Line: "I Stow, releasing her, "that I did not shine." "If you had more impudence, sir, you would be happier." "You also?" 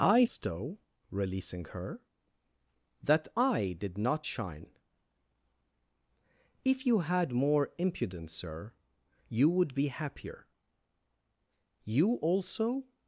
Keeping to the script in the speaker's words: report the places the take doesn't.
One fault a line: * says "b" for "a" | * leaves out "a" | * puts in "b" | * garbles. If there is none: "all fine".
all fine